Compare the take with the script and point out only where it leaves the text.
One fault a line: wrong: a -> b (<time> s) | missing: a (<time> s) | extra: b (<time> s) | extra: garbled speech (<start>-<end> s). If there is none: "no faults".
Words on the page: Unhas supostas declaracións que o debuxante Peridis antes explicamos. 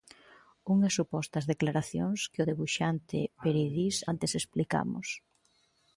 no faults